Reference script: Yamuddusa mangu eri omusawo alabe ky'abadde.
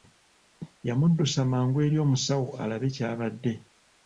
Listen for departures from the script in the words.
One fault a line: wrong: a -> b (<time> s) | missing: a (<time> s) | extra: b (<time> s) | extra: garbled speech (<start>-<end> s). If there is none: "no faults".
no faults